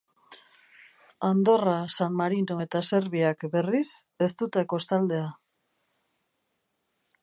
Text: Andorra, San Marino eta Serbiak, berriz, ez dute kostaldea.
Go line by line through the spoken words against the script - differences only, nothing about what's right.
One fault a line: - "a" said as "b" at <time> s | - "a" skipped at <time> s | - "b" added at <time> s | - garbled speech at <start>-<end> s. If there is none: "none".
none